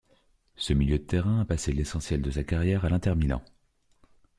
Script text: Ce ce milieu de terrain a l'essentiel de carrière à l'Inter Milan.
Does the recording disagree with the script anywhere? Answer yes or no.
yes